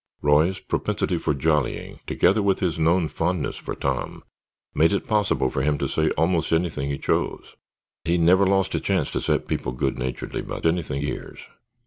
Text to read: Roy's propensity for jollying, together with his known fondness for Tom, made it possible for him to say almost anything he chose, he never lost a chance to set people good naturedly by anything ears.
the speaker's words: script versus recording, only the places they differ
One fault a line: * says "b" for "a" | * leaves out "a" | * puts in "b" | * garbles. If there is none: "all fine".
all fine